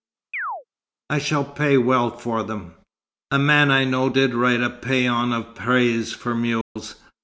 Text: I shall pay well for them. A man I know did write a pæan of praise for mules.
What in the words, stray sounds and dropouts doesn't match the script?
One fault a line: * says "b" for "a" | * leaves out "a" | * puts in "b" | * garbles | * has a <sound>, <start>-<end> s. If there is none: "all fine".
* has a chirp, 0.3-0.6 s
* has a dropout, 6.6-6.8 s